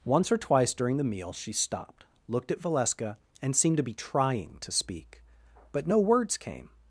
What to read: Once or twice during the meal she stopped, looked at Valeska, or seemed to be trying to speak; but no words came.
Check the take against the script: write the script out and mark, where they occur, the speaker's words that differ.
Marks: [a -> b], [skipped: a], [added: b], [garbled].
Once or twice during the meal she stopped, looked at Valeska, [or -> and] seemed to be trying to speak; but no words came.